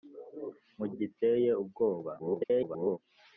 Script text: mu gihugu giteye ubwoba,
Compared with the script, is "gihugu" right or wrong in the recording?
wrong